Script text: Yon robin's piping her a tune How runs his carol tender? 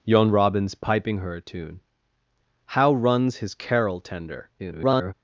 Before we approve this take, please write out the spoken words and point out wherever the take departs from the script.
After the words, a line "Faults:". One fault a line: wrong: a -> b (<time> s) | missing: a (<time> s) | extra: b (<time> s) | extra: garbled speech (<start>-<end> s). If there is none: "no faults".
Yon robin's piping her a tune How runs his carol tender? [garbled]
Faults:
extra: garbled speech (4.6-5.1 s)